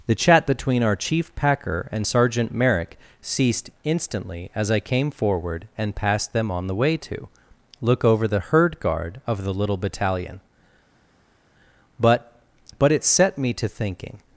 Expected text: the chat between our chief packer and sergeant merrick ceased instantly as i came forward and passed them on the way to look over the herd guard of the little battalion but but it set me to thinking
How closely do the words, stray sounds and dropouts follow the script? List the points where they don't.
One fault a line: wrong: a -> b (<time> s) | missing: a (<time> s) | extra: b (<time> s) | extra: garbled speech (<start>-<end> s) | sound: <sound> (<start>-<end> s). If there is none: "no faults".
no faults